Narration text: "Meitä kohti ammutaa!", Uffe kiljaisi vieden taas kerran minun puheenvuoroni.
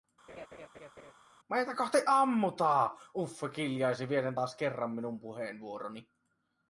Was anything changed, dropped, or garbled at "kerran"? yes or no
no